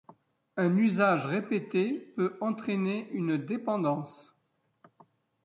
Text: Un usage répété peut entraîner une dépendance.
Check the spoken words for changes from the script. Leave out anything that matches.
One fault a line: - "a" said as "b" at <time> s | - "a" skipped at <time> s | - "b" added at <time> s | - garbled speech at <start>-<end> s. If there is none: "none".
none